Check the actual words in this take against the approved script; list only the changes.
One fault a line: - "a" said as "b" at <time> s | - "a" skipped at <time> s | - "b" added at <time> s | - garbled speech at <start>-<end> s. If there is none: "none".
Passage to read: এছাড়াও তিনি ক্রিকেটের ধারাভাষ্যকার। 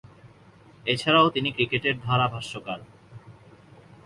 none